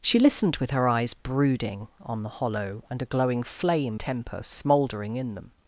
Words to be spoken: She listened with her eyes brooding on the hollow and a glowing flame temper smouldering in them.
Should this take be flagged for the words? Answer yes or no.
no